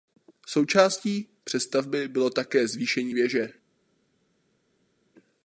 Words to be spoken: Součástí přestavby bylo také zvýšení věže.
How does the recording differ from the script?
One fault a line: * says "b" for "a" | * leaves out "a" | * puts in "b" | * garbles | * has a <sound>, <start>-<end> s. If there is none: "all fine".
all fine